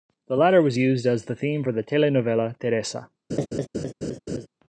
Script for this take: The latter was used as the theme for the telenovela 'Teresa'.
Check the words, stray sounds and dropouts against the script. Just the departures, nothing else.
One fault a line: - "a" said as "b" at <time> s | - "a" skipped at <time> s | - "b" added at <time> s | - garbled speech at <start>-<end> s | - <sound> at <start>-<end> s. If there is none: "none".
- laugh at 3.3-4.5 s